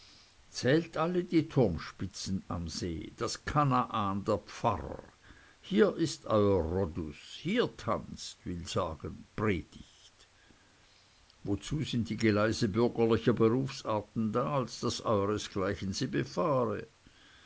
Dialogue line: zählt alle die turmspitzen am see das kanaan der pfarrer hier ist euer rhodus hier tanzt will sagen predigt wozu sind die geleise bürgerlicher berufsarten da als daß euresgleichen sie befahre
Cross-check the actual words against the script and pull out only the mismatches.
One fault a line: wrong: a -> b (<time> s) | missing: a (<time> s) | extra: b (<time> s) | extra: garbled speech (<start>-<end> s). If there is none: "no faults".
no faults